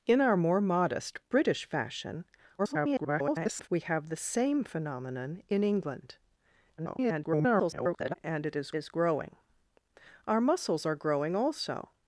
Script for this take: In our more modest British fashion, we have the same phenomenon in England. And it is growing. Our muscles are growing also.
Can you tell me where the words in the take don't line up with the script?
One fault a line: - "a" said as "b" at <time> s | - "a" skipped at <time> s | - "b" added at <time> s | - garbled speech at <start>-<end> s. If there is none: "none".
- garbled speech at 2.6-3.7 s
- garbled speech at 6.8-8.1 s
- "is" added at 8.7 s